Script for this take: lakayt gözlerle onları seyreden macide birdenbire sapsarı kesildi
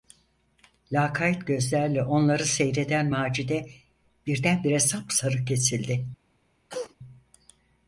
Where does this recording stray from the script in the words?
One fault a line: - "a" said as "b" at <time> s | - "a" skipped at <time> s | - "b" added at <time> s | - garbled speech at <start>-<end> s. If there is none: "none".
none